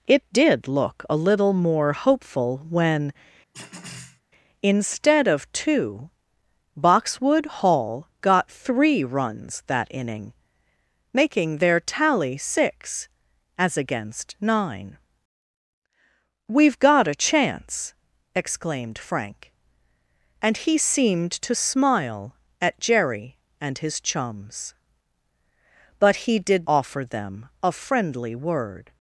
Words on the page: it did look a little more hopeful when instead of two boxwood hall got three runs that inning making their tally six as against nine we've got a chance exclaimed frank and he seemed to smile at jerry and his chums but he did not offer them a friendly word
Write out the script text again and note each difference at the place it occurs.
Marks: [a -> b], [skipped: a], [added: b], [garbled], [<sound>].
it did look a little more hopeful when [throat clearing] instead of two boxwood hall got three runs that inning making their tally six as against nine we've got a chance exclaimed frank and he seemed to smile at jerry and his chums but he did [skipped: not] offer them a friendly word